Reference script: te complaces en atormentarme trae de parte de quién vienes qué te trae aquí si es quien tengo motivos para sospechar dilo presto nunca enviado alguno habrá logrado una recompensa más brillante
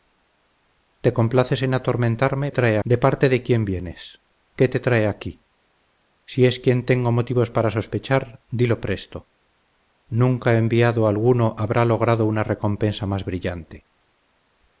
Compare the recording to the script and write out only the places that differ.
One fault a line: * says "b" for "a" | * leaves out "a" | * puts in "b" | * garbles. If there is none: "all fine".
all fine